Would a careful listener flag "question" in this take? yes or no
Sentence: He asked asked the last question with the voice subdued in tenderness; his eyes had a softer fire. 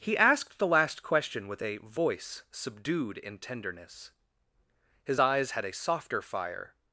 no